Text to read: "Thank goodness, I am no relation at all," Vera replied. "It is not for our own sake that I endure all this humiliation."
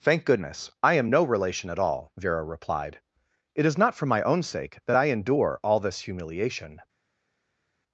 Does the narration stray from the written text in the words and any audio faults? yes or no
yes